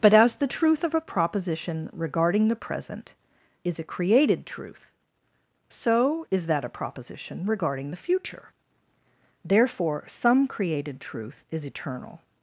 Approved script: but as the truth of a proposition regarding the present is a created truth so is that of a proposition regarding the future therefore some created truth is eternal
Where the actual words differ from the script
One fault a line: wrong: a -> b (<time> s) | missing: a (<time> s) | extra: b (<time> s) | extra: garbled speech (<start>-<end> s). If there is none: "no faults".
missing: of (6.6 s)